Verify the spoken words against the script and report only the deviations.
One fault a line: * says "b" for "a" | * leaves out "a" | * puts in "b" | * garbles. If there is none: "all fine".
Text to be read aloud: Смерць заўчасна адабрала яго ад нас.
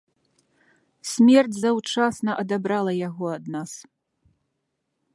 all fine